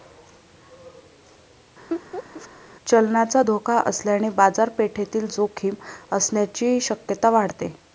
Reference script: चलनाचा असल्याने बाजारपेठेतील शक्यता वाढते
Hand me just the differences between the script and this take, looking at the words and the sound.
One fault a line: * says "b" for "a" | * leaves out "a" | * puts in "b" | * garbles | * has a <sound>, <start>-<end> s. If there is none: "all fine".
* has a laugh, 1.9-2.5 s
* puts in "धोका"
* puts in "जोखीम असण्याची"